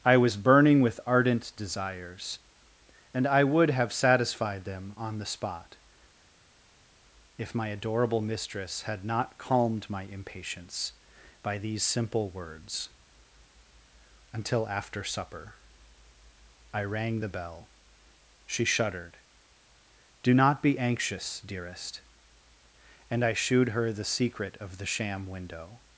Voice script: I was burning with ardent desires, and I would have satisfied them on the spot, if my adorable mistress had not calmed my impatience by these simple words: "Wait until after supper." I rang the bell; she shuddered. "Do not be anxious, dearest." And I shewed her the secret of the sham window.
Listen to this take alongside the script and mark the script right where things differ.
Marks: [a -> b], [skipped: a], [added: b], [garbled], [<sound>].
I was burning with ardent desires, and I would have satisfied them on the spot, if my adorable mistress had not calmed my impatience by these simple words: [skipped: "Wait] until after supper." I rang the bell; she shuddered. "Do not be anxious, dearest." And I shewed her the secret of the sham window.